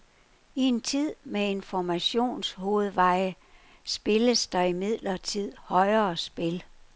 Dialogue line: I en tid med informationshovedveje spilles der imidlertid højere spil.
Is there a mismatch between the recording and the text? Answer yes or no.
no